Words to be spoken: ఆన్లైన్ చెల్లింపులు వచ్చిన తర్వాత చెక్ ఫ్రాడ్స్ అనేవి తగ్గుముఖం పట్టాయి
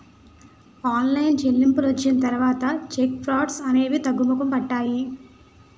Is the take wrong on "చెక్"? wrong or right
right